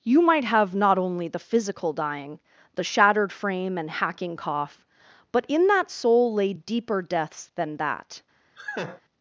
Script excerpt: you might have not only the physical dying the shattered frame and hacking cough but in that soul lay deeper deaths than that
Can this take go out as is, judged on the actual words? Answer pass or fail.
pass